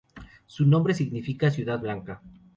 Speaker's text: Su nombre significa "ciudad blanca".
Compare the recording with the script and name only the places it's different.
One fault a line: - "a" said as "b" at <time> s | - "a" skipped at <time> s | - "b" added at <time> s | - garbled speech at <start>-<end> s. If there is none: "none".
none